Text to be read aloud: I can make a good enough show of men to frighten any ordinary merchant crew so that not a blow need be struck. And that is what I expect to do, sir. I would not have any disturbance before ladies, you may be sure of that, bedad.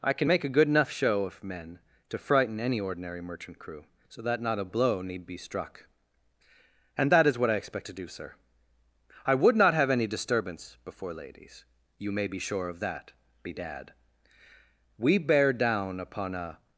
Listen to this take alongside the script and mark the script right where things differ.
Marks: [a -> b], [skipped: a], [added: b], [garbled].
I can make a good enough show of men to frighten any ordinary merchant crew so that not a blow need be struck. And that is what I expect to do, sir. I would not have any disturbance before ladies, you may be sure of that, bedad. [added: We bear down upon a]